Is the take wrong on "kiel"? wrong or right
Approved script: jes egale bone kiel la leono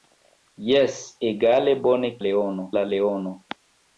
wrong